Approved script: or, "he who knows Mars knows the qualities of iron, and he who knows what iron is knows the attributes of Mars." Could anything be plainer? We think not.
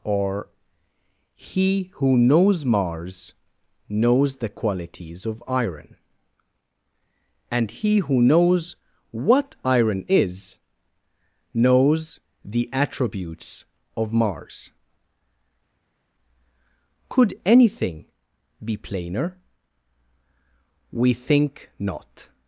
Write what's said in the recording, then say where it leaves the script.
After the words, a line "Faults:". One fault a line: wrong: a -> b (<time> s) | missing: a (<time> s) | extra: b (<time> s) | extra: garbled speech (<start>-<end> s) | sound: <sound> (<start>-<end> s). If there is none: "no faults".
or, "he who knows Mars knows the qualities of iron, and he who knows what iron is knows the attributes of Mars." Could anything be plainer? We think not.
Faults:
no faults